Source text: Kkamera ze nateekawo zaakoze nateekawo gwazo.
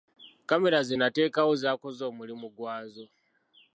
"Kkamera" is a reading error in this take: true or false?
false